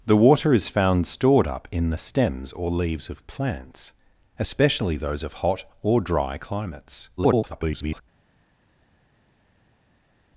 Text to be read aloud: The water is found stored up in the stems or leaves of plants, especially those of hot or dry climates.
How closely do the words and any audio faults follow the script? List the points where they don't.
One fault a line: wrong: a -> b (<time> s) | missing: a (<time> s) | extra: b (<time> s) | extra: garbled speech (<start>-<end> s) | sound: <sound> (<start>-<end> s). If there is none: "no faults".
extra: garbled speech (7.2-8.0 s)